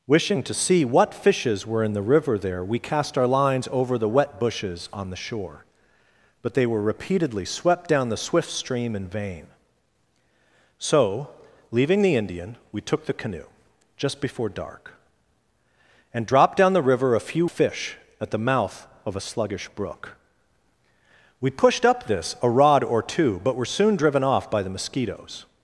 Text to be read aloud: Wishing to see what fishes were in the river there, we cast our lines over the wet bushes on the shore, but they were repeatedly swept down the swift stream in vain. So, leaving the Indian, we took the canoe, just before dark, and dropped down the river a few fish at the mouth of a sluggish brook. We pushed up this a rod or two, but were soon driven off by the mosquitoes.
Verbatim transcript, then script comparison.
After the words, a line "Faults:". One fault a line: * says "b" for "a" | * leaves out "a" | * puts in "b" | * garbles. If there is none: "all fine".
Wishing to see what fishes were in the river there, we cast our lines over the wet bushes on the shore, but they were repeatedly swept down the swift stream in vain. So, leaving the Indian, we took the canoe, just before dark, and dropped down the river a few fish at the mouth of a sluggish brook. We pushed up this a rod or two, but were soon driven off by the mosquitoes.
Faults:
all fine